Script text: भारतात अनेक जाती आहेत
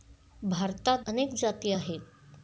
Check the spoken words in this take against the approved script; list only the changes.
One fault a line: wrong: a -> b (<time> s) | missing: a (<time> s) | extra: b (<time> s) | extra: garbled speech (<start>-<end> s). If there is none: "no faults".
no faults